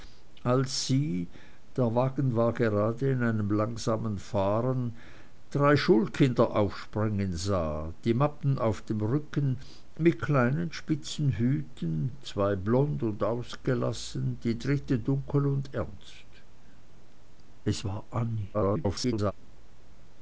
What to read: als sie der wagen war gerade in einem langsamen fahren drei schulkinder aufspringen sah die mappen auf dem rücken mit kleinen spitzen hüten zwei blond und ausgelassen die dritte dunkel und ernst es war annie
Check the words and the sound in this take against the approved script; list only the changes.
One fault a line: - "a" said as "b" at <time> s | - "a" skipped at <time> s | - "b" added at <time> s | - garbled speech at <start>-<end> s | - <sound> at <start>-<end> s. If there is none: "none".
- garbled speech at 18.5-19.3 s